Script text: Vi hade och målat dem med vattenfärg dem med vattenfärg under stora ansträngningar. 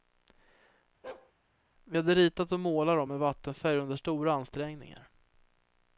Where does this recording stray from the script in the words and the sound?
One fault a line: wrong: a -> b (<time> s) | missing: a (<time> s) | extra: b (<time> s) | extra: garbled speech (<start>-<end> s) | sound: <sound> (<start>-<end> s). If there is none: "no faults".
sound: bark (1.0-1.3 s)
extra: ritat (2.1 s)
missing: dem med vattenfärg (3.8 s)